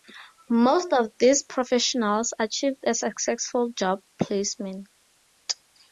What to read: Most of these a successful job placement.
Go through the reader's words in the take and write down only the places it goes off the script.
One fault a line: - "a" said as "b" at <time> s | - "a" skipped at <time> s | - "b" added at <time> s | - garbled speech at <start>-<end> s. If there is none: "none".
- "professionals achieved" added at 1.4 s